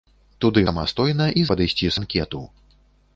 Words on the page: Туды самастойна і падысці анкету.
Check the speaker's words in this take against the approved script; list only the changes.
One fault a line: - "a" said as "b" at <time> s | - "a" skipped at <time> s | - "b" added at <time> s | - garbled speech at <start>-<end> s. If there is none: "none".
none